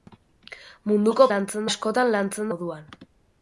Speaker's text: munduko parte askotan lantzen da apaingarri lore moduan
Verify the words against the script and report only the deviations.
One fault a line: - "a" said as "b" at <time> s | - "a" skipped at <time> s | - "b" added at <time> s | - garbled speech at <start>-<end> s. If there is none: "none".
- "parte" said as "lantzen" at 1.4 s
- "da apaingarri lore" skipped at 2.5 s